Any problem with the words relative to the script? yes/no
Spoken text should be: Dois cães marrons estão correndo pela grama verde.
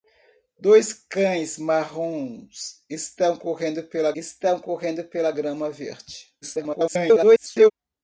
yes